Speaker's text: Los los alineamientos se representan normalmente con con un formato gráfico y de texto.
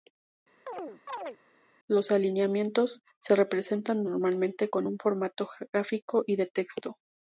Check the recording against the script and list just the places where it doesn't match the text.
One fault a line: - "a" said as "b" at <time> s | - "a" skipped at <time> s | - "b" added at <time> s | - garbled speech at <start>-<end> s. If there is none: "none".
- "los" skipped at 2.1 s
- "con" skipped at 4.9 s